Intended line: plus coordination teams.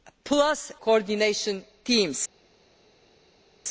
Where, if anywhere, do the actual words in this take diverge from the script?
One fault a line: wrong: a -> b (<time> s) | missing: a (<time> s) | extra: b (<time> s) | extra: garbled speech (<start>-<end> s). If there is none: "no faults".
no faults